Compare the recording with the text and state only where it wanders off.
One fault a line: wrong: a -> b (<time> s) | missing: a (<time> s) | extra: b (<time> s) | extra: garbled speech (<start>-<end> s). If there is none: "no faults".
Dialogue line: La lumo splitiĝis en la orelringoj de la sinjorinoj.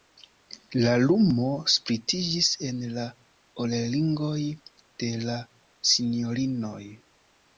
no faults